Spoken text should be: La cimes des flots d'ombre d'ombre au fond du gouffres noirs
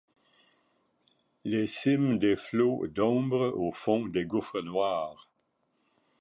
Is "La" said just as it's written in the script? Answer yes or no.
no